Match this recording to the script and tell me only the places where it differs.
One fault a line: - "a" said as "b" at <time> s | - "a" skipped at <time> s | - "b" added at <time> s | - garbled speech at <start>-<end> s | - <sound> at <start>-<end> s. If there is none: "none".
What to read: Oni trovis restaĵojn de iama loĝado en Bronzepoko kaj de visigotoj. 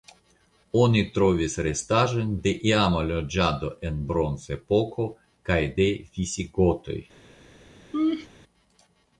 - laugh at 7.9-8.3 s